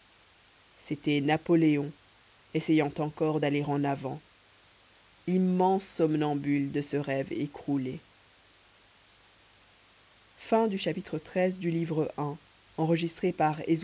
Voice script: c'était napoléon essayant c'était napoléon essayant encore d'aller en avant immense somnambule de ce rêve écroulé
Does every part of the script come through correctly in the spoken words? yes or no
no